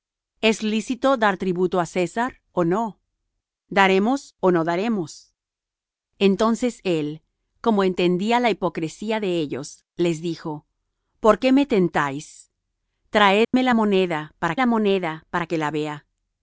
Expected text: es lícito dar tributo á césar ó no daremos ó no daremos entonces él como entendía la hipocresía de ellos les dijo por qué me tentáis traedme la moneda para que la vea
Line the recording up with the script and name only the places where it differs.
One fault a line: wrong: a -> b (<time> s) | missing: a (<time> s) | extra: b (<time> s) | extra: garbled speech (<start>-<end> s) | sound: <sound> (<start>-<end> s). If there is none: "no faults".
sound: dropout (13.4-13.5 s)
extra: la moneda para (14.6 s)